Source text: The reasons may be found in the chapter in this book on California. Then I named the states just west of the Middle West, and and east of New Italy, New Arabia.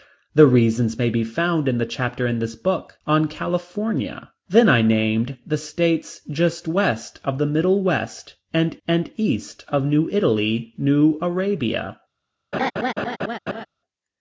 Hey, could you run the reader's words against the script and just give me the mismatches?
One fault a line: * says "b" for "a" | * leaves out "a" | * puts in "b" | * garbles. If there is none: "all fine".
all fine